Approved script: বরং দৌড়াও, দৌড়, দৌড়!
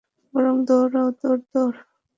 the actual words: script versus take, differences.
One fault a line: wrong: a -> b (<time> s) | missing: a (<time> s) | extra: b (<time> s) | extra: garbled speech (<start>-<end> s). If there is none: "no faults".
no faults